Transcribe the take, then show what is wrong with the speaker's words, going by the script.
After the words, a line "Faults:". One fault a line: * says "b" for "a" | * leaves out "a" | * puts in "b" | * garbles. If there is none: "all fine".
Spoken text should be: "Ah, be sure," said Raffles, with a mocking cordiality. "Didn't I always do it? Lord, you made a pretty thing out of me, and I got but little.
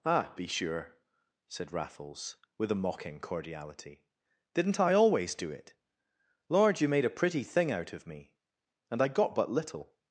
"Ah, be sure," said Raffles, with a mocking cordiality. "Didn't I always do it? Lord, you made a pretty thing out of me, and I got but little.
Faults:
all fine